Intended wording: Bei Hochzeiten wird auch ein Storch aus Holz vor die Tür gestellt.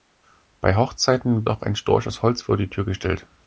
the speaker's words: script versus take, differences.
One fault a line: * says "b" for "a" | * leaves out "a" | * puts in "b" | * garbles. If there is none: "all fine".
* leaves out "wird"